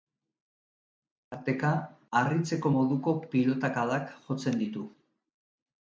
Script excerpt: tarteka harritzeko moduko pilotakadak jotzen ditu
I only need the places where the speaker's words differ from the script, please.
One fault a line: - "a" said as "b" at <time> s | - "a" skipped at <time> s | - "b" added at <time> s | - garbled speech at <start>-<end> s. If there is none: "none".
none